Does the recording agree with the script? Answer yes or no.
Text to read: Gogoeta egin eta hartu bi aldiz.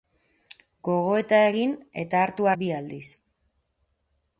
yes